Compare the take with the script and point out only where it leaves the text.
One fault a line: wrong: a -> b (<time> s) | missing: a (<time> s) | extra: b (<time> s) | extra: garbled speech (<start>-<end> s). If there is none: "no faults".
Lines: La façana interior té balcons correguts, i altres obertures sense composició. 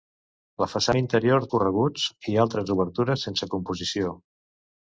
missing: té balcons (1.4 s)